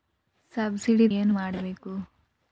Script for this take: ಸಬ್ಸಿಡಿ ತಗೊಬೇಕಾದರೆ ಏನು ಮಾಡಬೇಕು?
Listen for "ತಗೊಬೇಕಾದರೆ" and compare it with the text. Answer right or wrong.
wrong